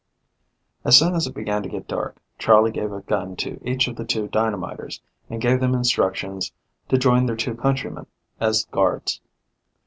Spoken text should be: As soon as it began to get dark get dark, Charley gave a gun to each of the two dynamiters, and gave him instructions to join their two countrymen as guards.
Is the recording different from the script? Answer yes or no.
yes